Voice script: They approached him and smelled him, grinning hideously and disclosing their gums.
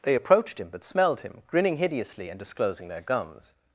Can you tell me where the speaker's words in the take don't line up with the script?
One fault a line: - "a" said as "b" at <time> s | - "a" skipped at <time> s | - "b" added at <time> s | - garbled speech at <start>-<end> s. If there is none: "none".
- "and" said as "but" at 0.7 s